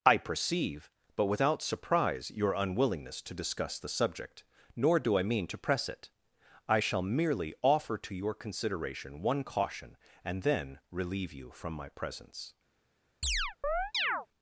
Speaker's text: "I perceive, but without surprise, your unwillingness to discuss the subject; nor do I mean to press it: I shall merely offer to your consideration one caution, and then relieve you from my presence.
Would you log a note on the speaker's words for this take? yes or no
no